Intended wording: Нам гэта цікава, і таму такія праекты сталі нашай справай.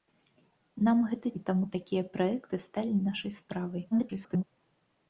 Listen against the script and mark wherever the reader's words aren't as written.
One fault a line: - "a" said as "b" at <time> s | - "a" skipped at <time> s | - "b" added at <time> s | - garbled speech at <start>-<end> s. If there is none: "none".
- "цікава" skipped at 1.3 s
- garbled speech at 3.9-4.4 s